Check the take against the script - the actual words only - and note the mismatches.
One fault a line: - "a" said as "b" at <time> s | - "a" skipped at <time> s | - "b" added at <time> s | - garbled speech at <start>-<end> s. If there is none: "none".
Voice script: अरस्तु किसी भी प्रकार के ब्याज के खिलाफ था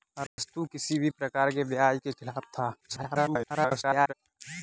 - garbled speech at 2.8-4.1 s